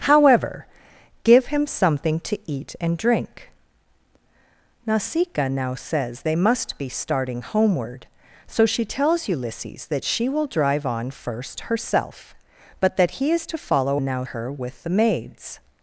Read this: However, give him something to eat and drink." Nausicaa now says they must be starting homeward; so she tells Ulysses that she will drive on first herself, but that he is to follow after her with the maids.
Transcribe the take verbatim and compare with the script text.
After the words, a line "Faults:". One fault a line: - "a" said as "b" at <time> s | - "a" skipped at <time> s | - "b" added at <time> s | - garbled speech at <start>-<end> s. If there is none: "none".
However, give him something to eat and drink." Nausicaa now says they must be starting homeward; so she tells Ulysses that she will drive on first herself, but that he is to follow now her with the maids.
Faults:
- "after" said as "now" at 14.0 s